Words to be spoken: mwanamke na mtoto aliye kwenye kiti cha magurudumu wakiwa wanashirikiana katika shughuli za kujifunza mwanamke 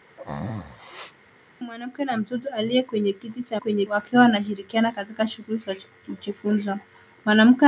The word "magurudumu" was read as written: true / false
false